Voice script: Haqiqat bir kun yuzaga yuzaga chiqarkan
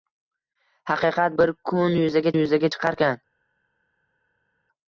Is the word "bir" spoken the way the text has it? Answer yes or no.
yes